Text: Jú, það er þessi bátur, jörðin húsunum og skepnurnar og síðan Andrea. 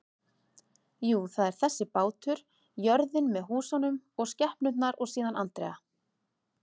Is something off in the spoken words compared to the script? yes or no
yes